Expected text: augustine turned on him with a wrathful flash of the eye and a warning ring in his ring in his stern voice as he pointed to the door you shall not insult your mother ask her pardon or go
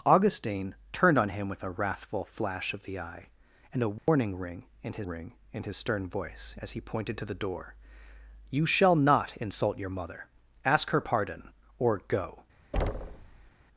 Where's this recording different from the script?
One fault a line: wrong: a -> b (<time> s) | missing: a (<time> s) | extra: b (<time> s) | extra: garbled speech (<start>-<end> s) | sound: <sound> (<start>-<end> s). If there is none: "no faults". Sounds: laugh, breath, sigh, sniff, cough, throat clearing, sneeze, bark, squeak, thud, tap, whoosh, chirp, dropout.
sound: dropout (4.0-4.1 s)
sound: thud (12.7-13.5 s)